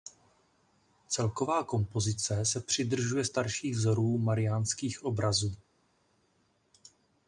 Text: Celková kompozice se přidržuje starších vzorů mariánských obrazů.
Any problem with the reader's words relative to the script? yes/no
no